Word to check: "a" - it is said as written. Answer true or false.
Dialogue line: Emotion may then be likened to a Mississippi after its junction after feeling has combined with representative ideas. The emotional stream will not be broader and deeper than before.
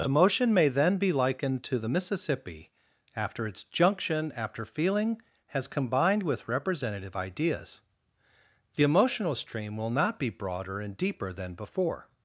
false